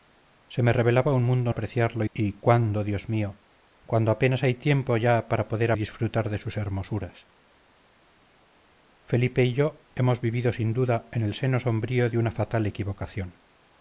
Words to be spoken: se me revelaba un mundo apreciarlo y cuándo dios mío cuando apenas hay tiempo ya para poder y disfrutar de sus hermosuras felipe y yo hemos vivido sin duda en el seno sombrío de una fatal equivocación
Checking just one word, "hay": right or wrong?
right